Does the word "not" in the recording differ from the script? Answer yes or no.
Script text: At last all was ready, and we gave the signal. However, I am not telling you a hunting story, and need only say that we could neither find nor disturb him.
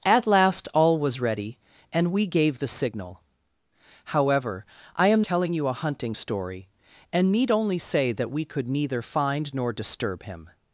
yes